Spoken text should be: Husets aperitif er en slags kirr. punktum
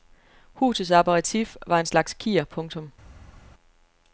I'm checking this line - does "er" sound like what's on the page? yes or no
no